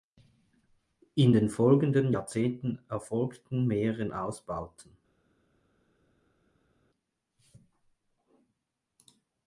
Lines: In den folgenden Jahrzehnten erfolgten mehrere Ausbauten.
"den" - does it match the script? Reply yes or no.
yes